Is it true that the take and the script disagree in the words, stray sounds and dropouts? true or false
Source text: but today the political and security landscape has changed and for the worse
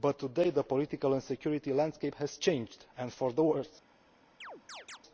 true